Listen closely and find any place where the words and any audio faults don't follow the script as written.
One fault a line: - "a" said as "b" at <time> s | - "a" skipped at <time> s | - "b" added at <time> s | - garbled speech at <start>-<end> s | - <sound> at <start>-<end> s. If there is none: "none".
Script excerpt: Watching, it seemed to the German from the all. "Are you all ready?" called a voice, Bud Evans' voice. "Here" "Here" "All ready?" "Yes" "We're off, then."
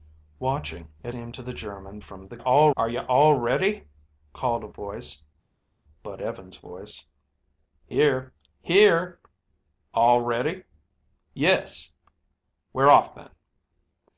none